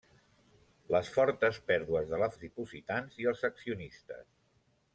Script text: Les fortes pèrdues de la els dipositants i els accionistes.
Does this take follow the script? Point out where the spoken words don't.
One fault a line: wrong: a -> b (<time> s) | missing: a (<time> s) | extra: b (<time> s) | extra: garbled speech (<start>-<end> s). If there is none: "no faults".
no faults